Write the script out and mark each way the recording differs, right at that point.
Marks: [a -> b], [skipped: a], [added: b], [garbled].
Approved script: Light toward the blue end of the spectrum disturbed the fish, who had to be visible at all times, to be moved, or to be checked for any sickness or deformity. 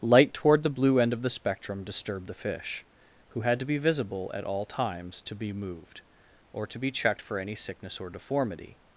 Light toward the blue end of the spectrum disturbed the fish, who had to be visible at all times, to be moved, or to be checked for any sickness or deformity.